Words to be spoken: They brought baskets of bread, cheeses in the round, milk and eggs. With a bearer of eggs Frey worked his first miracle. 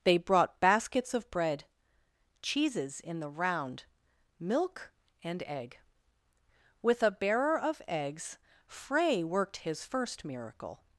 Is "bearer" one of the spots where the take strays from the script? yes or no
no